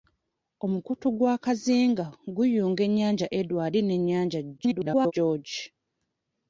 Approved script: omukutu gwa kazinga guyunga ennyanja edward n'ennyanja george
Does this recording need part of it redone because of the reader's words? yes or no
yes